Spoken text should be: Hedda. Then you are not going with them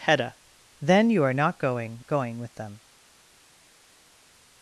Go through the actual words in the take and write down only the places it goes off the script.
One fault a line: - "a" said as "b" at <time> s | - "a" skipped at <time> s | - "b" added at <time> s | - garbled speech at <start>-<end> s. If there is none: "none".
- "going" added at 2.1 s